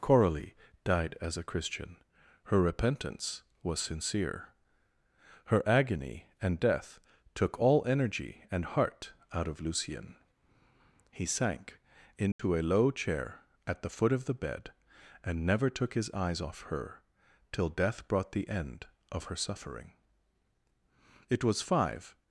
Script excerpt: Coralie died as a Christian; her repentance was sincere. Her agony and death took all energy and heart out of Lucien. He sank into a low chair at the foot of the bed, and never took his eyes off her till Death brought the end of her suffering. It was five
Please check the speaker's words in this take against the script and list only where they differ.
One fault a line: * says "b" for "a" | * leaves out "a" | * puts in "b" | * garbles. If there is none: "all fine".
all fine